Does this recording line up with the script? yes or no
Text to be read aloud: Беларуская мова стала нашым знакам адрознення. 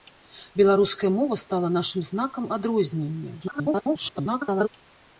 no